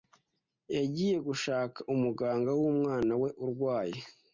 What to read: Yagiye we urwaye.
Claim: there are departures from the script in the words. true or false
true